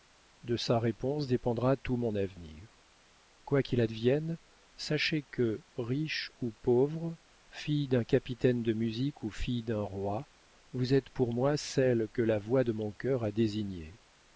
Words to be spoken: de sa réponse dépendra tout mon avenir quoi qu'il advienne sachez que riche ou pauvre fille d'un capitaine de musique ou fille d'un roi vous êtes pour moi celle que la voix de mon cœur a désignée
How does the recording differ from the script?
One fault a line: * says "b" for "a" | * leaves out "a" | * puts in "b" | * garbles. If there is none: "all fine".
all fine